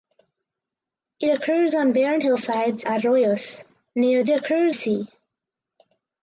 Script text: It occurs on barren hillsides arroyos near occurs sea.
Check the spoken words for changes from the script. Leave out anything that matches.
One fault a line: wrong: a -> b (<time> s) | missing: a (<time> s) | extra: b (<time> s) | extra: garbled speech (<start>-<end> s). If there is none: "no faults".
no faults